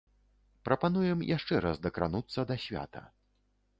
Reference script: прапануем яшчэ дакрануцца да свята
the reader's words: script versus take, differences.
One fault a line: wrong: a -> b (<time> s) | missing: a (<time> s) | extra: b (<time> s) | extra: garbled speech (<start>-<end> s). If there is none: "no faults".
extra: раз (1.7 s)